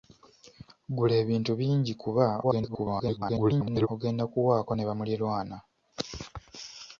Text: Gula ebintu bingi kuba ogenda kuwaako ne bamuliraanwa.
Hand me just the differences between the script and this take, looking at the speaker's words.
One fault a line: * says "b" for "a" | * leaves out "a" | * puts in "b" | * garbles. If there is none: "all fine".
* garbles